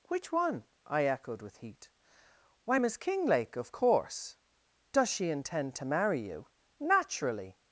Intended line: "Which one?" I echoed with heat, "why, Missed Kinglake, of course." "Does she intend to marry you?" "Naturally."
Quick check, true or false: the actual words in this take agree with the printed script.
false